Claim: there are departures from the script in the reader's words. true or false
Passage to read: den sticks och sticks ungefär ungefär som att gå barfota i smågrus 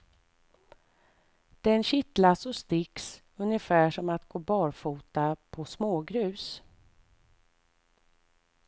true